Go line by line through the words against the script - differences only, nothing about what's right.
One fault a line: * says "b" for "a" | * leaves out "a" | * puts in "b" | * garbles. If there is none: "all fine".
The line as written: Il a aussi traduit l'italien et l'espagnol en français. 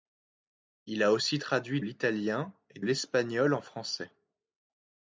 all fine